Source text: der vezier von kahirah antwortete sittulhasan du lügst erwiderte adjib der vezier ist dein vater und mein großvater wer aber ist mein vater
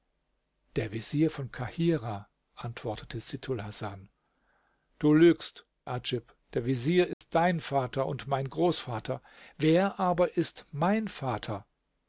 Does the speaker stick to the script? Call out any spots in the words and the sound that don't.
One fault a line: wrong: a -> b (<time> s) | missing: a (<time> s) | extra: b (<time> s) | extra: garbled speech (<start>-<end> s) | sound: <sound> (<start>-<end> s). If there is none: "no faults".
missing: erwiderte (5.7 s)
sound: dropout (7.1-7.2 s)